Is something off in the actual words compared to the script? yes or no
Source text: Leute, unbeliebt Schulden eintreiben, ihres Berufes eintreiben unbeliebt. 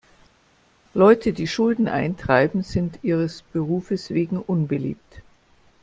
yes